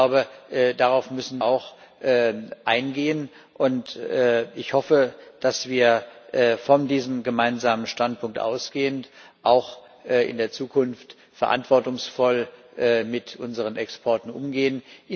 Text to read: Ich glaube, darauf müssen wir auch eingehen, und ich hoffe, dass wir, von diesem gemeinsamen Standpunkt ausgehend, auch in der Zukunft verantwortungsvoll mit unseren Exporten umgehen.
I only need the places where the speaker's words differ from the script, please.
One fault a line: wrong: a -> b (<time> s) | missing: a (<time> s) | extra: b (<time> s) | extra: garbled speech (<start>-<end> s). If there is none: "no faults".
missing: wir (1.4 s)